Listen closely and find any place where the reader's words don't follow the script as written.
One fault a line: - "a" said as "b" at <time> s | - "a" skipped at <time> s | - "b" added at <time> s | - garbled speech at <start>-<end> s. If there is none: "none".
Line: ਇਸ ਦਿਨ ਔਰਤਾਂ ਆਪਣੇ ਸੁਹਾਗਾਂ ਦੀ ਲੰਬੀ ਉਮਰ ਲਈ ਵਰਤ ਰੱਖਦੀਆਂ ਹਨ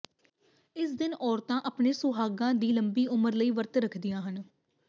none